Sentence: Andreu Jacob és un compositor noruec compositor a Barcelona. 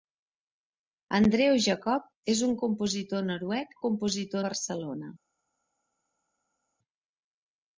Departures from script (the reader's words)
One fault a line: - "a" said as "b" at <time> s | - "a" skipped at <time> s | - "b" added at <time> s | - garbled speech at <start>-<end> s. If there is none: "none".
none